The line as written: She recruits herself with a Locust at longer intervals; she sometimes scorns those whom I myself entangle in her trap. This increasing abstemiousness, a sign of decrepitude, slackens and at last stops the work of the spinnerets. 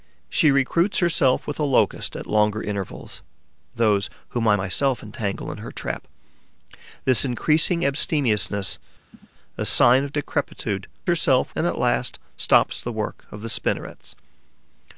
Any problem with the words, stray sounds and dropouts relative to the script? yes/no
yes